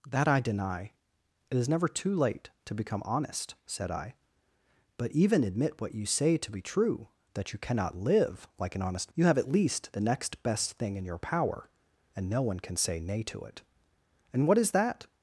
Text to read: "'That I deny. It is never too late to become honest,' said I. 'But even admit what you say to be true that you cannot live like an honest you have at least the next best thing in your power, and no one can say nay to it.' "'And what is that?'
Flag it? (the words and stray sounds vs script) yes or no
no